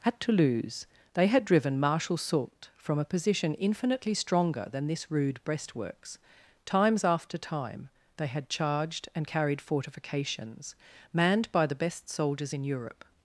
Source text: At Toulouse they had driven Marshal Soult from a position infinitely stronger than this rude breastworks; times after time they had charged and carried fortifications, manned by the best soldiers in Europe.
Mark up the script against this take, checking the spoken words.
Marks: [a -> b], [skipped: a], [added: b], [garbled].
At Toulouse they had driven Marshal Soult from a position infinitely stronger than this rude breastworks; times after time they had charged and carried fortifications, manned by the best soldiers in Europe.